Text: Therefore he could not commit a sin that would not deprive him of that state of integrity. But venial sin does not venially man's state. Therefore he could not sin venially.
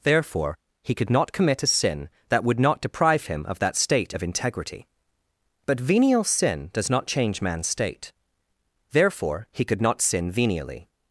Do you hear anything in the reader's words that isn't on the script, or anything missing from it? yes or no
yes